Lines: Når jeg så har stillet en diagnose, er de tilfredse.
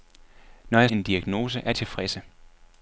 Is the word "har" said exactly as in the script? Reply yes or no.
no